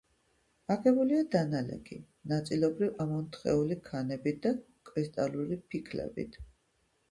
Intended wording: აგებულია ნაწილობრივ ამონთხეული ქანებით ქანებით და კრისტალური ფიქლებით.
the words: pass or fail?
fail